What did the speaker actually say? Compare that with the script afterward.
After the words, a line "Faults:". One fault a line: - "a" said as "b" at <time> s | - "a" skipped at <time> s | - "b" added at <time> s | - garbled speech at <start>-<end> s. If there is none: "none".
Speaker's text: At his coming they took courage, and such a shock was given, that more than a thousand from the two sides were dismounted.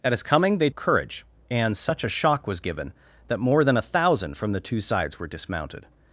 At his coming they courage, and such a shock was given, that more than a thousand from the two sides were dismounted.
Faults:
- "took" skipped at 0.7 s